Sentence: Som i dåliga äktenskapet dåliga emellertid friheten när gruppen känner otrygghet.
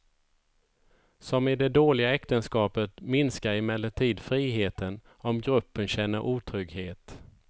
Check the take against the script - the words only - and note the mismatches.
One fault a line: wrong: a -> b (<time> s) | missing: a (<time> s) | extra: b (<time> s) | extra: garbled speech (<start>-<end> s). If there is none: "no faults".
extra: det (1.6 s)
wrong: dåliga -> minskar (3.0 s)
wrong: när -> om (5.1 s)